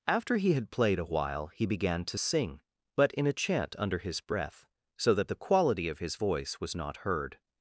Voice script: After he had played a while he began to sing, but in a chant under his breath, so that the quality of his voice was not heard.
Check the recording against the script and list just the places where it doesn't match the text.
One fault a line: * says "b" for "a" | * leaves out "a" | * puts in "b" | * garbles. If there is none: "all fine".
all fine